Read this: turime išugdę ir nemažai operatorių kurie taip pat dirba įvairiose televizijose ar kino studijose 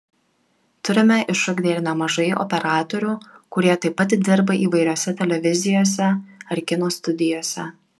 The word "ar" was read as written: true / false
true